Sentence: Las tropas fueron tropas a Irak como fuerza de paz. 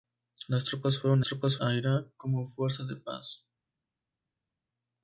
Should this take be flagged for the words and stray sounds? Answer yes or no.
no